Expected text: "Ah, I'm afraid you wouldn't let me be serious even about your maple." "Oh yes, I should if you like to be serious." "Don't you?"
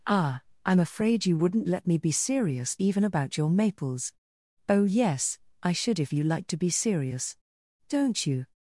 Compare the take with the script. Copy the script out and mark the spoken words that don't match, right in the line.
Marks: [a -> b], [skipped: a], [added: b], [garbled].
"Ah, I'm afraid you wouldn't let me be serious even about your [maple." -> maples] "Oh yes, I should if you like to be serious." "Don't you?"